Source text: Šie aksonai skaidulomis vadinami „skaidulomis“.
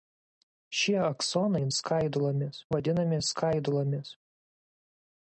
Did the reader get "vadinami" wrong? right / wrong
right